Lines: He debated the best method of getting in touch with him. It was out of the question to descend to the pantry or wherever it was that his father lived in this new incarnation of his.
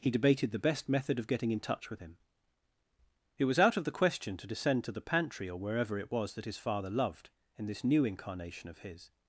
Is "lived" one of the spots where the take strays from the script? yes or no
yes